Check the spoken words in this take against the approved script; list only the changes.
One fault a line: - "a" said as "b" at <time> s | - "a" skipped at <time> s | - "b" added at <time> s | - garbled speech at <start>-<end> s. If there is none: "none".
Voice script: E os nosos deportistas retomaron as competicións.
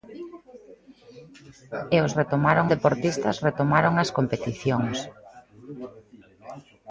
- "nosos" said as "retomaron" at 2.2 s